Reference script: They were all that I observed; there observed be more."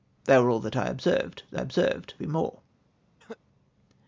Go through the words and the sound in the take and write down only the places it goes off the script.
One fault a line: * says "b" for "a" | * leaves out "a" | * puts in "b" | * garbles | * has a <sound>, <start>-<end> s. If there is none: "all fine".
* has a cough, 3.2-3.4 s